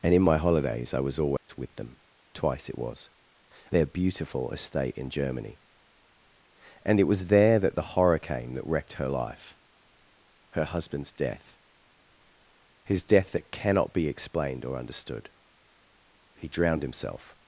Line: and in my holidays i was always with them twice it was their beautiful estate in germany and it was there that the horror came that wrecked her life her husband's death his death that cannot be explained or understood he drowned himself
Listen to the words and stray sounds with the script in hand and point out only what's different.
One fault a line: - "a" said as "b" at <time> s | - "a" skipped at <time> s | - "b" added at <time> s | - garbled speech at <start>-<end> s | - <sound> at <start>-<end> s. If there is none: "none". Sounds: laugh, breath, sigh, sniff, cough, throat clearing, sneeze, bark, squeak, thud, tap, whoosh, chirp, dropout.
- dropout at 1.4-1.5 s